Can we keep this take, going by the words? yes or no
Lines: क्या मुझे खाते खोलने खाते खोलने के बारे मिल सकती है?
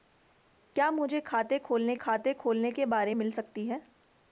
yes